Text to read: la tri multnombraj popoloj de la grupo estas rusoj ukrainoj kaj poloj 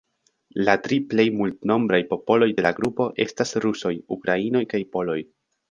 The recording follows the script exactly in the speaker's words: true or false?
false